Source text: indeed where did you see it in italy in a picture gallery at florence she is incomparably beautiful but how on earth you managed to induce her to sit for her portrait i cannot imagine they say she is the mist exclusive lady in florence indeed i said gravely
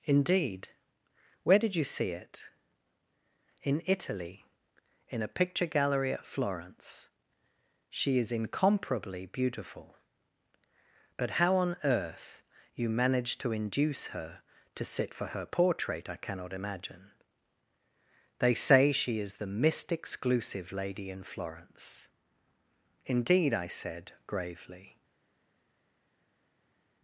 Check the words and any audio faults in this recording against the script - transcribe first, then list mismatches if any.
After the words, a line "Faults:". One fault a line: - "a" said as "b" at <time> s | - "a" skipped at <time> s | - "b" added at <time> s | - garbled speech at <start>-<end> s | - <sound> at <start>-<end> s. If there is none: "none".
indeed where did you see it in italy in a picture gallery at florence she is incomparably beautiful but how on earth you managed to induce her to sit for her portrait i cannot imagine they say she is the mist exclusive lady in florence indeed i said gravely
Faults:
none